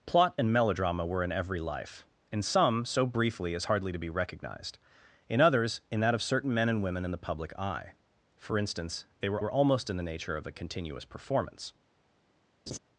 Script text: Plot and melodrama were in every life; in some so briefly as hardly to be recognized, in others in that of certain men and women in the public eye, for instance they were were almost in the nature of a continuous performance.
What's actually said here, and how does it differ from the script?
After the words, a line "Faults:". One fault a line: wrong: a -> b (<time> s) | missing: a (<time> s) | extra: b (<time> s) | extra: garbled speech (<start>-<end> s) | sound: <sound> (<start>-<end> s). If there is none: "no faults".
Plot and melodrama were in every life; in some so briefly as hardly to be recognized, in others in that of certain men and women in the public eye, for instance they were were almost in the nature of a continuous performance.
Faults:
sound: laugh (12.7-12.8 s)